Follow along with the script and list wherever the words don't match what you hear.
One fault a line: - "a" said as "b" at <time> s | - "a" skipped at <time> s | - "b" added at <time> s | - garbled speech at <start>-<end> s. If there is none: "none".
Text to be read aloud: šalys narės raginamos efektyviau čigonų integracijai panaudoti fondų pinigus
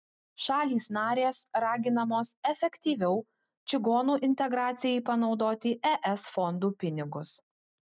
- "es" added at 6.2 s